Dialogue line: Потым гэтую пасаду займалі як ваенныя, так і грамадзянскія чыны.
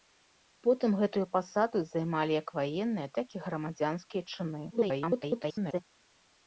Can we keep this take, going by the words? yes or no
no